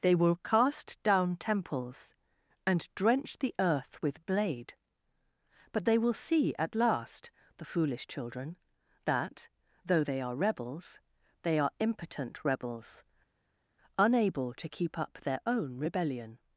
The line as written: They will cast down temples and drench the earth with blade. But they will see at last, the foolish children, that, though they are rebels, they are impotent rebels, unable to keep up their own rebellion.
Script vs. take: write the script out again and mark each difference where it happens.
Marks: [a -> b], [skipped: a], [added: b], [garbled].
They will cast down temples and drench the earth with blade. But they will see at last, the foolish children, that, though they are rebels, they are impotent rebels, unable to keep up their own rebellion.